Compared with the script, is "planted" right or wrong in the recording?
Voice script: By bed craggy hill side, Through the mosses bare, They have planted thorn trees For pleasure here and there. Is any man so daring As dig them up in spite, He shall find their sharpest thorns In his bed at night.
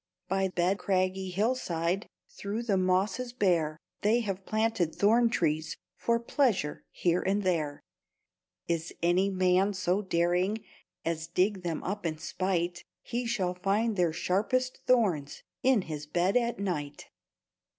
right